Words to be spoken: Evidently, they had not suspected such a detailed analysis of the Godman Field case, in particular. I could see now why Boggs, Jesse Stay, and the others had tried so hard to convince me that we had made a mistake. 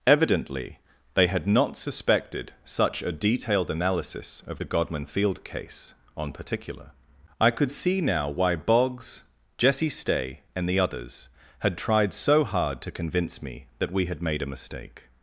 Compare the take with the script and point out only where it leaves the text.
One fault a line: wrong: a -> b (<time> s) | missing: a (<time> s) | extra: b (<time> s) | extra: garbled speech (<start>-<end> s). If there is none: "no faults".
wrong: in -> on (6.2 s)